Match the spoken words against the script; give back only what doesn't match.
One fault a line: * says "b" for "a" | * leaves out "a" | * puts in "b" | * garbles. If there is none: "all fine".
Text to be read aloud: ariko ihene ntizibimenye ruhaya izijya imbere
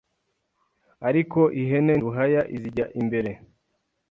* leaves out "ntizibimenye"